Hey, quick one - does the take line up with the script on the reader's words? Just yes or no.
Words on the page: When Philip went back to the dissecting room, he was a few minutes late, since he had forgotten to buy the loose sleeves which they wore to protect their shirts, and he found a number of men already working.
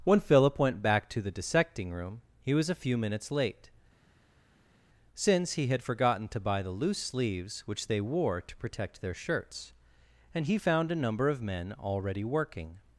yes